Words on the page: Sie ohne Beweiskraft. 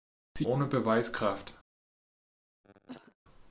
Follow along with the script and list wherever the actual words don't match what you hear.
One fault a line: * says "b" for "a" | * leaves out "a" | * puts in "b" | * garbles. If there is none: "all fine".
all fine